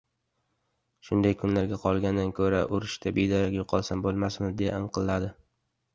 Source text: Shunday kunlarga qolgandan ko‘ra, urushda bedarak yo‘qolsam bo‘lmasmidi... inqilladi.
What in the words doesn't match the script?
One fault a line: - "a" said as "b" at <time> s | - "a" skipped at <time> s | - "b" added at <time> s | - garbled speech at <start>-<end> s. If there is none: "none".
- "deya" added at 4.6 s